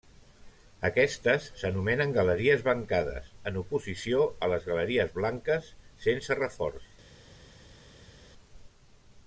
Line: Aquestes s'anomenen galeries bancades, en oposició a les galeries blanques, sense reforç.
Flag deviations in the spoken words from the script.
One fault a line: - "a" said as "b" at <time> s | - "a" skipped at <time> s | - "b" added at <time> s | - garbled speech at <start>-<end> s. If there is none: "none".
none